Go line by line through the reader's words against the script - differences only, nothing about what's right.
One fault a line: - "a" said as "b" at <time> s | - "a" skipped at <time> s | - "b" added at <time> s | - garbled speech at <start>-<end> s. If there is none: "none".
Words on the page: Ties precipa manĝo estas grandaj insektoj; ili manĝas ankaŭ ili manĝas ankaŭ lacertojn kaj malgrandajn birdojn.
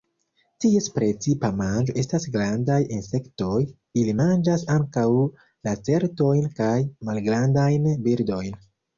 - "ili manĝas ankaŭ" skipped at 5.1 s